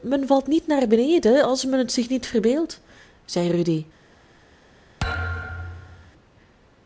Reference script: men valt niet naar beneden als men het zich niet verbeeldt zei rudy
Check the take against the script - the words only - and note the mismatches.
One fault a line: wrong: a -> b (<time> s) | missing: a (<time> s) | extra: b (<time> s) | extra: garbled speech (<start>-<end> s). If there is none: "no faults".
no faults